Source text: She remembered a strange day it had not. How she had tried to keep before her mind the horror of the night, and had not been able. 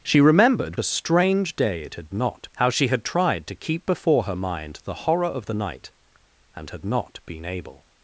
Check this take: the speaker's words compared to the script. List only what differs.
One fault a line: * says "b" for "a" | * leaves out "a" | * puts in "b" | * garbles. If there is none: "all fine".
all fine